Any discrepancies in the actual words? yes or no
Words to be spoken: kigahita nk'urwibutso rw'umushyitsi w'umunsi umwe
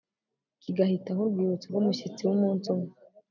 no